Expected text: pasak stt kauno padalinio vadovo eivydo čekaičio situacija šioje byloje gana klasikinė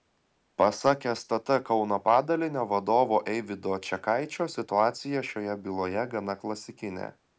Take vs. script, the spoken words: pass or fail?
pass